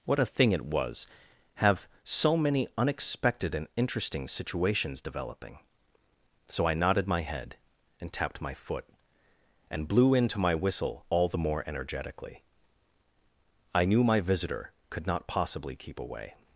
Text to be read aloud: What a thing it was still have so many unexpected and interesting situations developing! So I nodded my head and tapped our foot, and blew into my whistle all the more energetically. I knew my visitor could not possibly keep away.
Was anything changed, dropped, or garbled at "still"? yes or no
yes